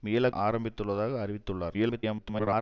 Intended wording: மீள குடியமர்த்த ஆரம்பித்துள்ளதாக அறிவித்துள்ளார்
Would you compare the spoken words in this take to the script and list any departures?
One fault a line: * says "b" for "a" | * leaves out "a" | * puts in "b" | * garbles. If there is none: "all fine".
* leaves out "குடியமர்த்த"
* garbles